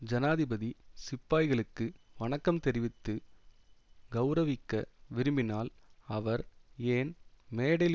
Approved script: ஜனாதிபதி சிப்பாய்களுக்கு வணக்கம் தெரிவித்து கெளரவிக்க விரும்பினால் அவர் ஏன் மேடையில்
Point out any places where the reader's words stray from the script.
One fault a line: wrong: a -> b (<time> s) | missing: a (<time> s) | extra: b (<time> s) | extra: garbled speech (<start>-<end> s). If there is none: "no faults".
no faults